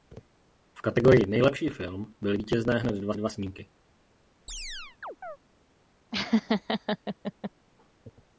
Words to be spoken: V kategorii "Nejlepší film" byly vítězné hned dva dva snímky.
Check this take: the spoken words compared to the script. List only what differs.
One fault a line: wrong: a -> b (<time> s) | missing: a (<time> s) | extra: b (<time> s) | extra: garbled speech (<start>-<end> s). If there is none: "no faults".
no faults